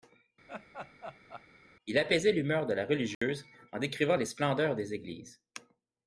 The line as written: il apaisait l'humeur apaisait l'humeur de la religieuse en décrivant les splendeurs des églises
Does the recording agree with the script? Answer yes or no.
no